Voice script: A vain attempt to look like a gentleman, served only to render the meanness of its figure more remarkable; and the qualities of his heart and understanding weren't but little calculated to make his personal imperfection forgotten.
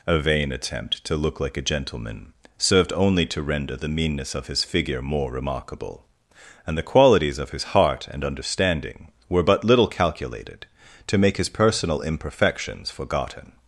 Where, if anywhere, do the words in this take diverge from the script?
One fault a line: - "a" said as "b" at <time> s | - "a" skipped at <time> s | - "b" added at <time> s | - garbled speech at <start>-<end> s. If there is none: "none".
- "its" said as "his" at 4.5 s
- "weren't" said as "were" at 9.3 s
- "imperfection" said as "imperfections" at 12.0 s